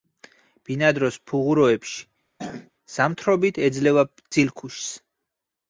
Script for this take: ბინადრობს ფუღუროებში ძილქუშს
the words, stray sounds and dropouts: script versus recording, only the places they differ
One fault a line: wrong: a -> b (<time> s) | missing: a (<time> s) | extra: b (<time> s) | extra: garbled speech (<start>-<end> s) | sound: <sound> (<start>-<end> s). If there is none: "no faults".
sound: throat clearing (2.4-2.7 s)
extra: ზამთრობით ეძლევა (3.0 s)